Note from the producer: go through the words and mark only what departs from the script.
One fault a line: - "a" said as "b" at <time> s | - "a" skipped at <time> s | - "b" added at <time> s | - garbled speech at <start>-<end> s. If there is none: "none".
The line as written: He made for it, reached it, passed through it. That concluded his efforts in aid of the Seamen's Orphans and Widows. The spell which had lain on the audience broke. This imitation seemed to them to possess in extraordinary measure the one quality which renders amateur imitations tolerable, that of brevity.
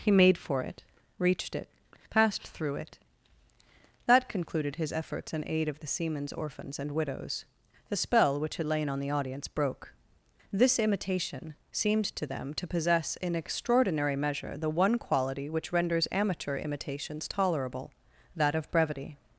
none